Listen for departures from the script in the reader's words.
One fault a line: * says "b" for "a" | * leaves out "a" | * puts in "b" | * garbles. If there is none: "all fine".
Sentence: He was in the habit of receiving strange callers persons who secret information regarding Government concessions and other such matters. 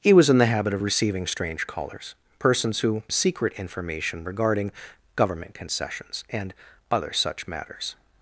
all fine